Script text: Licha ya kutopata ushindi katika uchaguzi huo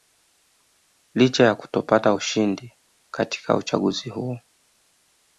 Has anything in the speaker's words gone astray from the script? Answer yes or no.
no